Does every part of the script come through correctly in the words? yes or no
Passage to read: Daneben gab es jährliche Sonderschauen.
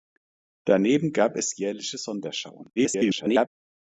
no